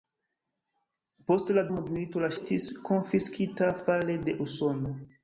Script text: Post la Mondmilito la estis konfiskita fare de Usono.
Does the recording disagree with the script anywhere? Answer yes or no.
no